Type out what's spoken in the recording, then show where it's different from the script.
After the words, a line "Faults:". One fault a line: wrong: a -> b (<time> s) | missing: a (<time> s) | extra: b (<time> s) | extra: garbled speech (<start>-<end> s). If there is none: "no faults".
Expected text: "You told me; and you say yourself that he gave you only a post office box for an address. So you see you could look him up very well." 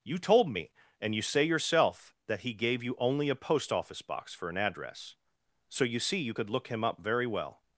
"You told me; and you say yourself that he gave you only a post office box for an address. So you see you could look him up very well."
Faults:
no faults